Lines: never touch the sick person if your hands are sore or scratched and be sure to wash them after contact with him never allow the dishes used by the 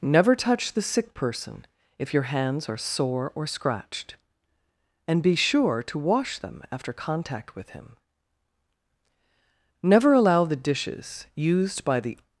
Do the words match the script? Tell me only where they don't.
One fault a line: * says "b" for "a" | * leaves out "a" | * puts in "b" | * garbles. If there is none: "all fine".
all fine